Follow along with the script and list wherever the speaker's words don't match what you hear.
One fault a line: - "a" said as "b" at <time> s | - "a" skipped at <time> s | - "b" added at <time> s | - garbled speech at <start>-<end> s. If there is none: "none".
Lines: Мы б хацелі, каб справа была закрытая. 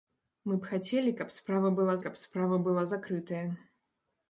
- "каб справа была" added at 2.0 s